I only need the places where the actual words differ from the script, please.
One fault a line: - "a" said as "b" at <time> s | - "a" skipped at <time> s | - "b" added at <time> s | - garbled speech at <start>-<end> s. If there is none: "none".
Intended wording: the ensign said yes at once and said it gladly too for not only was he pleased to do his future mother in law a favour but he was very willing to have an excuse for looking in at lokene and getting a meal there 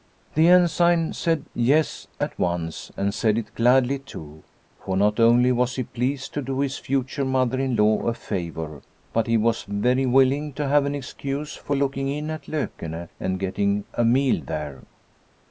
none